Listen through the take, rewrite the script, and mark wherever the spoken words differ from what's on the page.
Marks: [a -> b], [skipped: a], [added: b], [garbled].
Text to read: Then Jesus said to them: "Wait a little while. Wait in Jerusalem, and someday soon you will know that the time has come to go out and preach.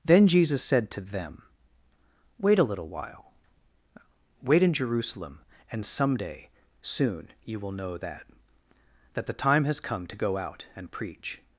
Then Jesus said to them: "Wait a little while. Wait in Jerusalem, and someday soon you will know that [added: that] the time has come to go out and preach.